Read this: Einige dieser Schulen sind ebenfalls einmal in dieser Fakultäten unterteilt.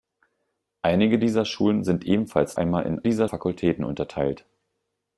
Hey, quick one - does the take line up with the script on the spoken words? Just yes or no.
yes